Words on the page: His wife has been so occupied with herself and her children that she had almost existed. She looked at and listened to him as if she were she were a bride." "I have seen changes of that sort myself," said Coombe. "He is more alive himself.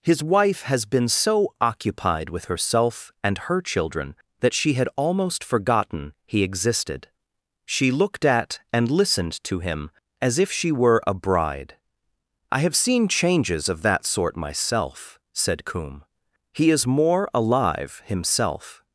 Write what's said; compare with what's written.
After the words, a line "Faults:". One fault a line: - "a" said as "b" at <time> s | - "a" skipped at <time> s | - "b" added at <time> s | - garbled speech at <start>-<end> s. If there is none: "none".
His wife has been so occupied with herself and her children that she had almost forgotten he existed. She looked at and listened to him as if she were a bride." "I have seen changes of that sort myself," said Coombe. "He is more alive himself.
Faults:
- "forgotten he" added at 5.4 s
- "she were" skipped at 11.0 s